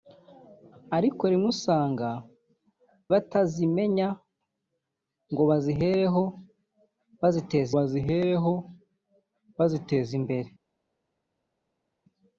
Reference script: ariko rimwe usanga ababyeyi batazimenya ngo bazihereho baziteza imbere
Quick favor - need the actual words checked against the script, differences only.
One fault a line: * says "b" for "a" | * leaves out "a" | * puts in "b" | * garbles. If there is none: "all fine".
* leaves out "ababyeyi"
* puts in "bazihereho baziteza"